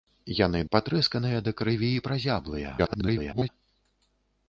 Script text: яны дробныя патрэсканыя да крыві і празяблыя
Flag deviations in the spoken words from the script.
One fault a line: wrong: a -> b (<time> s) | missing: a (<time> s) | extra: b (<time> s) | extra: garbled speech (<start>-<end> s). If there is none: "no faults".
missing: дробныя (0.6 s)
extra: garbled speech (2.8-3.5 s)